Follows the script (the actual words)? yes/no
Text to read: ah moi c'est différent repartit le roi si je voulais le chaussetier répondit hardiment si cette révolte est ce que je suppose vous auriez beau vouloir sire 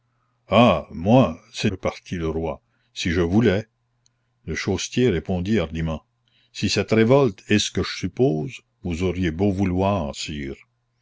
no